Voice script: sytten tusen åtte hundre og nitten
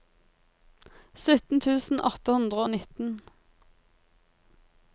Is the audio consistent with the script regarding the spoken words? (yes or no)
yes